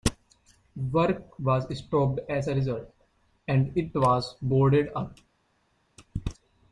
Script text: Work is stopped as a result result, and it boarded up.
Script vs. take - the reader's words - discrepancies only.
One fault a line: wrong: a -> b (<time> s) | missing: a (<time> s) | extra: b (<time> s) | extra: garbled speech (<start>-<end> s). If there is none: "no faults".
wrong: is -> was (1.4 s)
missing: result (3.0 s)
extra: was (3.9 s)